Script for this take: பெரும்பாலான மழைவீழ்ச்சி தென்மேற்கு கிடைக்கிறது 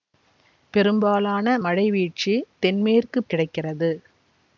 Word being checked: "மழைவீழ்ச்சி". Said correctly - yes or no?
yes